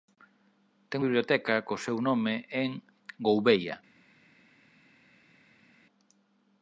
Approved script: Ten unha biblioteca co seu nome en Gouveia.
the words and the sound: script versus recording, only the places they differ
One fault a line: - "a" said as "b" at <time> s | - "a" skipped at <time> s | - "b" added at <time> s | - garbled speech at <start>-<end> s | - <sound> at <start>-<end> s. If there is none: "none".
- "unha" skipped at 1.0 s